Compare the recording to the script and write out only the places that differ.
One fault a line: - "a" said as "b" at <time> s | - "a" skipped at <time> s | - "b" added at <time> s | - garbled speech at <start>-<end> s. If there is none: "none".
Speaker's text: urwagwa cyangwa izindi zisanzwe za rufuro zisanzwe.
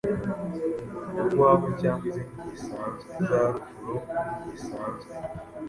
none